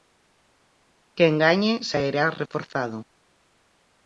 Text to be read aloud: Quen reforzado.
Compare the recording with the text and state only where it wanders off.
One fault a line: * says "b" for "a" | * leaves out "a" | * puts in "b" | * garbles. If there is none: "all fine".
* puts in "gañe sairá"